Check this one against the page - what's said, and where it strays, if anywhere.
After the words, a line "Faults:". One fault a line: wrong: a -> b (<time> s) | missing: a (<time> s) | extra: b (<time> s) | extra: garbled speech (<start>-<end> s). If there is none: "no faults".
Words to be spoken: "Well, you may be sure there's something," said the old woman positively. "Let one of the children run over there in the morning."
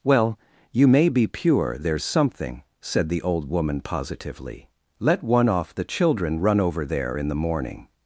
"Well, you may be pure there's something," said the old woman positively. "Let one off the children run over there in the morning."
Faults:
wrong: sure -> pure (1.3 s)
wrong: of -> off (5.5 s)